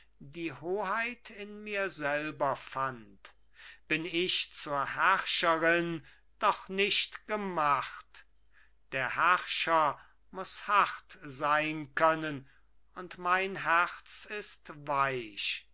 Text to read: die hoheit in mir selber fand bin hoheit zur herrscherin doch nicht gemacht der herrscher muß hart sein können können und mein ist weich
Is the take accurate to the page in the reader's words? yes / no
no